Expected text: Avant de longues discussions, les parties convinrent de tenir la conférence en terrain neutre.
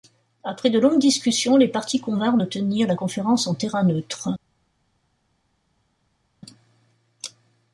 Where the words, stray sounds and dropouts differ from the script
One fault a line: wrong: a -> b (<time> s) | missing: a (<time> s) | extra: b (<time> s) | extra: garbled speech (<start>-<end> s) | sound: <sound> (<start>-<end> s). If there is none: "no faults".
wrong: Avant -> Après (0.4 s)